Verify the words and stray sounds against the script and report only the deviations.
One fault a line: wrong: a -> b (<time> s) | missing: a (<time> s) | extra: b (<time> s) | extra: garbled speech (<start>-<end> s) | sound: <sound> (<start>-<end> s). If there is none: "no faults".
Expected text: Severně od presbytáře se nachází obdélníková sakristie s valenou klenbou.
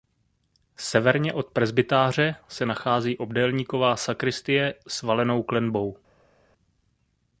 no faults